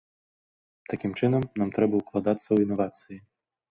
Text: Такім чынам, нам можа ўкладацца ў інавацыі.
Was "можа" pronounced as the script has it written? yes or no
no